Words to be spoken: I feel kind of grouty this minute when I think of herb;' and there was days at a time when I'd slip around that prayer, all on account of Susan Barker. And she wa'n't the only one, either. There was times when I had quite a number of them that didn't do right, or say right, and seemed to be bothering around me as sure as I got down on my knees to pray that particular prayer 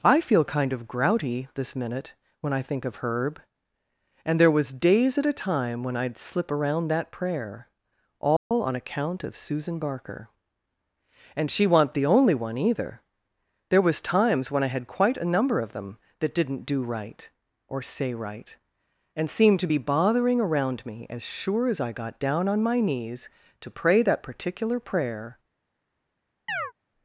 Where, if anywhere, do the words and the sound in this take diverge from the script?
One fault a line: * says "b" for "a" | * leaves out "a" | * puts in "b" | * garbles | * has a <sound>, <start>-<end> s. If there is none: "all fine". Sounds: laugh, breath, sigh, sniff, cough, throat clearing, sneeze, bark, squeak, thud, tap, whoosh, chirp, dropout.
* has a dropout, 8.4-8.5 s
* has a chirp, 26.5-26.7 s